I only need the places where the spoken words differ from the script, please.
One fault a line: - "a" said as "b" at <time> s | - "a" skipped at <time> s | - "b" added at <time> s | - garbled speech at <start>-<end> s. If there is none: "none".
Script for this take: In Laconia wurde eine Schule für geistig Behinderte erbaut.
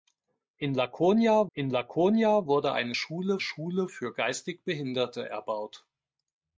- "in Laconia" added at 1.5 s
- "Schule" added at 3.4 s